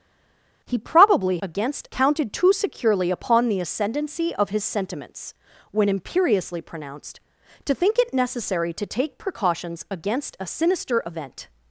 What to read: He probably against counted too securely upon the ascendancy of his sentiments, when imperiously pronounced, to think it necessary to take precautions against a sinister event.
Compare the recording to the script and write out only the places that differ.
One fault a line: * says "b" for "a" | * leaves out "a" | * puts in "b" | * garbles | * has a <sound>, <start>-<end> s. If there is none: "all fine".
all fine